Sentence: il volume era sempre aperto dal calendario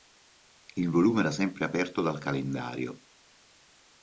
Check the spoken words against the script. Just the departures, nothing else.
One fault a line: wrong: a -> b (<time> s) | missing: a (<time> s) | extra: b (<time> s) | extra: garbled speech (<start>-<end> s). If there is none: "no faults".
no faults